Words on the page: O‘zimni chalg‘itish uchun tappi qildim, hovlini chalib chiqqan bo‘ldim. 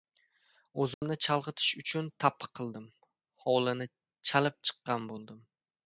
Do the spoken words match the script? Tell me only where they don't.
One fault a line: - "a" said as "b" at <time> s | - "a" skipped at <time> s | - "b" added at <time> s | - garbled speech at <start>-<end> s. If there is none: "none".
none